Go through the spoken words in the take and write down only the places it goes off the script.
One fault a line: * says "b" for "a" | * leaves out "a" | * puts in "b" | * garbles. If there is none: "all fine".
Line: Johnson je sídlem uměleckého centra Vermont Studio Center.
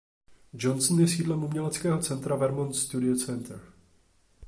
all fine